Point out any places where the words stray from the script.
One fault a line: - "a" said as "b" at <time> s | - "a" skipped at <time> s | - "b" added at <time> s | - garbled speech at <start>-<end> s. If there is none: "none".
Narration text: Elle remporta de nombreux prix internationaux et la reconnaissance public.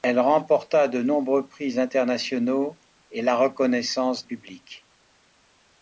none